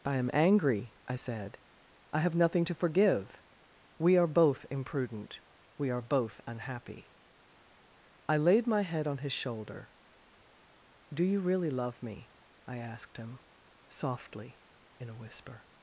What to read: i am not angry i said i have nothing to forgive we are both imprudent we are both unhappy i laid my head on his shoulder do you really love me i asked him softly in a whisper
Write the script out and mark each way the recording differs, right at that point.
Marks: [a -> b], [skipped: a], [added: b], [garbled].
i am [skipped: not] angry i said i have nothing to forgive we are both imprudent we are both unhappy i laid my head on his shoulder do you really love me i asked him softly in a whisper